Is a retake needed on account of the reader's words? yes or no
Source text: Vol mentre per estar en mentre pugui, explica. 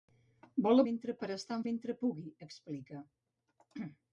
no